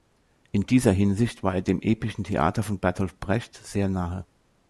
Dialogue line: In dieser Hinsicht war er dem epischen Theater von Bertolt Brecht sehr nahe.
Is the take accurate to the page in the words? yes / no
yes